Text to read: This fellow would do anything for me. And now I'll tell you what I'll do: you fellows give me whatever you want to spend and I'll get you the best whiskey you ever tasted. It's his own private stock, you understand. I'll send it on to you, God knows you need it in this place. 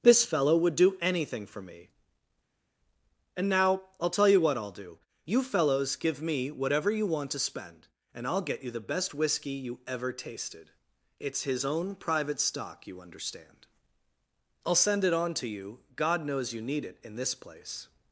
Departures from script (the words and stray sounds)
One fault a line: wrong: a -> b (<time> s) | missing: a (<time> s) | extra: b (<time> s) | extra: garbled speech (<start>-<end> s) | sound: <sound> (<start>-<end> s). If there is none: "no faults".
no faults